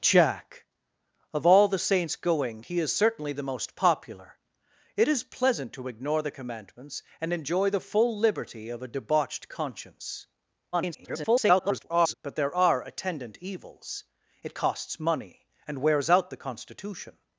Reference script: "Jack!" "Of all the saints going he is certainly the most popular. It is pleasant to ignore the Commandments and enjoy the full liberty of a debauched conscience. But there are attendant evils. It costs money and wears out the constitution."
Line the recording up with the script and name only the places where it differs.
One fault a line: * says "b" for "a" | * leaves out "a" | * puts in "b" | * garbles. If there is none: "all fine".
* garbles